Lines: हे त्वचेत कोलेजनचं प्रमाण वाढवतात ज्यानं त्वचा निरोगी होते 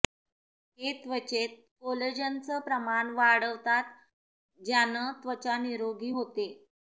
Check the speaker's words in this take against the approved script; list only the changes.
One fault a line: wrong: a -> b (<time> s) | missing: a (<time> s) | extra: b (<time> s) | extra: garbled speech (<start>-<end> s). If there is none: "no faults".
no faults